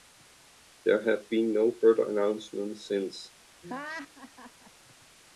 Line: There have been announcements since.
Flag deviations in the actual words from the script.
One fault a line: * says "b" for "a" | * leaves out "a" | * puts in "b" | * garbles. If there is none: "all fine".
* puts in "no further"